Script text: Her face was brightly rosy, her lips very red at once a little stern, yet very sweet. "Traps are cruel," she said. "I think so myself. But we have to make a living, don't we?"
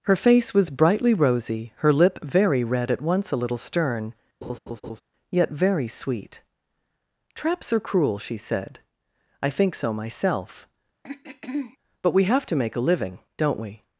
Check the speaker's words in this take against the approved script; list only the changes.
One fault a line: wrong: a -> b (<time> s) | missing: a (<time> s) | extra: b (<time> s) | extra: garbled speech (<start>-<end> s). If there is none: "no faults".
wrong: lips -> lip (1.9 s)